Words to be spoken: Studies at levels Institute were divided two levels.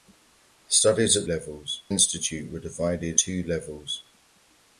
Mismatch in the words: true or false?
false